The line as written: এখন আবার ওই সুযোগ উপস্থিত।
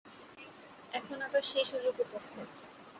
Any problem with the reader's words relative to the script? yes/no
yes